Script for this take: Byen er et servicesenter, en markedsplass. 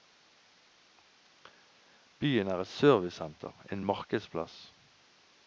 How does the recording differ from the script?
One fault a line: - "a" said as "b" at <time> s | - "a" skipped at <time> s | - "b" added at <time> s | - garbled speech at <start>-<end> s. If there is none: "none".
none